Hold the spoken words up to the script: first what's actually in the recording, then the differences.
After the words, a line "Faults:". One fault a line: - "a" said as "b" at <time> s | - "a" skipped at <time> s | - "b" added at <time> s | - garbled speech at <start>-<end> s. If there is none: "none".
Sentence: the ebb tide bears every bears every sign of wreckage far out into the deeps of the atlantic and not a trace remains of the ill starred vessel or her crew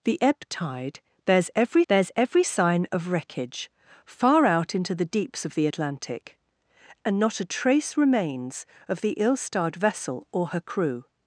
the ebb tide bears every bears every sign of wreckage far out into the deeps of the atlantic and not a trace remains of the ill starred vessel or her crew
Faults:
none